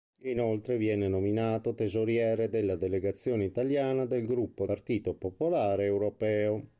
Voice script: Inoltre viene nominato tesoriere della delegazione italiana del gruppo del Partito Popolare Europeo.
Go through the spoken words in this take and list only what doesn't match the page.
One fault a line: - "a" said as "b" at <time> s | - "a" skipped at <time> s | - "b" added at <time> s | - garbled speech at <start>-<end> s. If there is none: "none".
- "del" skipped at 4.7 s